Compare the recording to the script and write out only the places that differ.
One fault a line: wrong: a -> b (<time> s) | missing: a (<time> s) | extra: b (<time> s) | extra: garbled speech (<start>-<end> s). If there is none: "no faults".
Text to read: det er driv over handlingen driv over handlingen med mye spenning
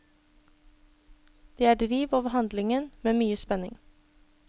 missing: driv over handlingen (2.9 s)